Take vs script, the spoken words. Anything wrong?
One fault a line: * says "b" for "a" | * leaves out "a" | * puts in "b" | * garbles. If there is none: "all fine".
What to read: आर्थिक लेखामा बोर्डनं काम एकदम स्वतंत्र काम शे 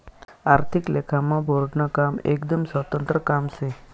all fine